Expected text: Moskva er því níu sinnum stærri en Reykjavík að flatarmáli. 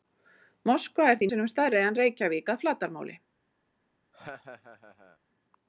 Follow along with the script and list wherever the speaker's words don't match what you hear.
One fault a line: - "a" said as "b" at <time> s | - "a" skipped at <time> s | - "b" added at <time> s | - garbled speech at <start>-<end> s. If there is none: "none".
- "níu" skipped at 1.3 s